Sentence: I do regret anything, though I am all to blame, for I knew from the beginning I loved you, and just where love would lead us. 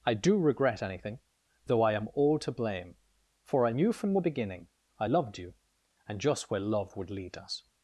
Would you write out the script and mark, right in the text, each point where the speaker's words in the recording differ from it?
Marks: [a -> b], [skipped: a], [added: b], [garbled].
I do regret anything, though I am all to blame, for I knew from the beginning I loved you, and just where love would lead us.